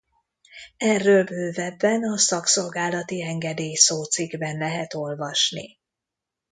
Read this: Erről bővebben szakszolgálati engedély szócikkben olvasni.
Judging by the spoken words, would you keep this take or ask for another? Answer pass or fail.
fail